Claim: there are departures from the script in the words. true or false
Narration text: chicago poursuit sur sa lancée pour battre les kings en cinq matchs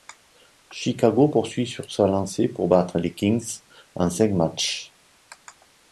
false